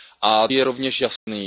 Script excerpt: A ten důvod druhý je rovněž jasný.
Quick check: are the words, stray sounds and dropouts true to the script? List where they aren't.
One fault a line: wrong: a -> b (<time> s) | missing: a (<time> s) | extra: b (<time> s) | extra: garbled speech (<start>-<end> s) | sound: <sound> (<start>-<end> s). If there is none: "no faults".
missing: ten důvod druhý (0.5 s)
sound: dropout (1.2-1.3 s)